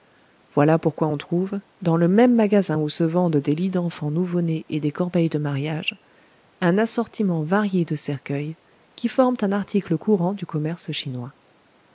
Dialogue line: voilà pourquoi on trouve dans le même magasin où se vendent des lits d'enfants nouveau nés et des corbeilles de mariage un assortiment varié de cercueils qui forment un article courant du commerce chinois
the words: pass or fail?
pass